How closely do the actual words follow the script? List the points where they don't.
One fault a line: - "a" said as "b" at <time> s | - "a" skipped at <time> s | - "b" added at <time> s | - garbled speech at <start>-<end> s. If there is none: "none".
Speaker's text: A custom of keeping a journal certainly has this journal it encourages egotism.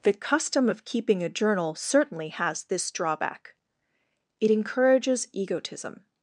- "A" said as "The" at 0.0 s
- "journal" said as "drawback" at 2.9 s